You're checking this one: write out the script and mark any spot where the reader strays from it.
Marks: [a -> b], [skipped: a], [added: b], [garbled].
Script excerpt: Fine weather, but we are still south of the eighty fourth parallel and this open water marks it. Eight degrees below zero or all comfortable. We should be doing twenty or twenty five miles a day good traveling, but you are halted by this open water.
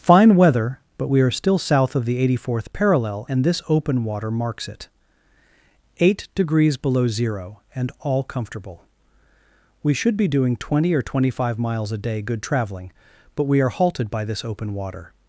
Fine weather, but we are still south of the eighty fourth parallel and this open water marks it. Eight degrees below zero [or -> and] all comfortable. We should be doing twenty or twenty five miles a day good traveling, but [you -> we] are halted by this open water.